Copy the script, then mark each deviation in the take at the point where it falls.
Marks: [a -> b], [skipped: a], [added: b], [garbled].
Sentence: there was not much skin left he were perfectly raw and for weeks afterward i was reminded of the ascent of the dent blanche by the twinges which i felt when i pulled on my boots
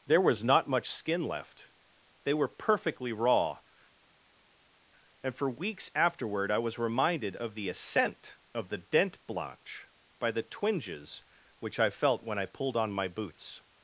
there was not much skin left [he -> they] were perfectly raw and for weeks afterward i was reminded of the ascent of the dent blanche by the twinges which i felt when i pulled on my boots